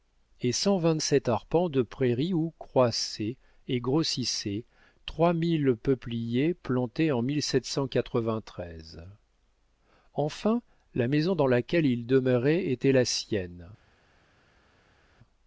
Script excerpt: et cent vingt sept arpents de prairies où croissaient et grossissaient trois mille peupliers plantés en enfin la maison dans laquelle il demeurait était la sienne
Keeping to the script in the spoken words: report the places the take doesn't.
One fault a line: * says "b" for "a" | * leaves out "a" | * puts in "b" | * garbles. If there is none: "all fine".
all fine